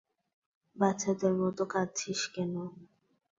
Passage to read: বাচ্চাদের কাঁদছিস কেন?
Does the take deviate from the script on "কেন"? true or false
false